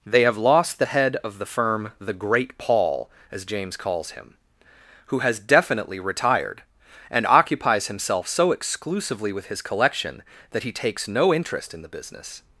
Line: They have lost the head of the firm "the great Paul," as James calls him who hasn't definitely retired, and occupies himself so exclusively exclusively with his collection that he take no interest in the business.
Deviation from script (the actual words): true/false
true